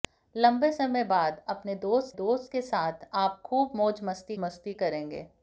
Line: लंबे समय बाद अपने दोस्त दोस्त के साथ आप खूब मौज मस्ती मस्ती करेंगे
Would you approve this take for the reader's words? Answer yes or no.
yes